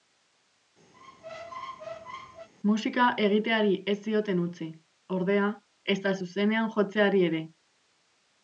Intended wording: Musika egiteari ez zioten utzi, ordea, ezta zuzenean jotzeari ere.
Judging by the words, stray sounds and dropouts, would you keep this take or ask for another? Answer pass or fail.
fail